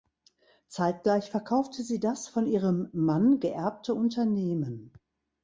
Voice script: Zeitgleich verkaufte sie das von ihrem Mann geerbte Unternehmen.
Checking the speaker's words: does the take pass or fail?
pass